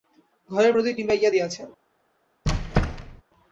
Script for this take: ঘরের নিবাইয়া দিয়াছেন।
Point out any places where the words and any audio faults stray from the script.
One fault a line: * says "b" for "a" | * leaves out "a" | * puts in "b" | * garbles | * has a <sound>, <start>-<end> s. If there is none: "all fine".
* puts in "প্রদীপ"
* has a squeak, 2.4-3.2 s